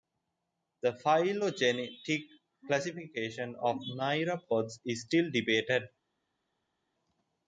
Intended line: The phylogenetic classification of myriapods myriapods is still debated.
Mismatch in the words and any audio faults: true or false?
true